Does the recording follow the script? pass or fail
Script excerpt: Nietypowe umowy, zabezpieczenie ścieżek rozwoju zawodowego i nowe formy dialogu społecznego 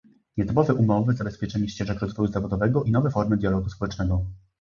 pass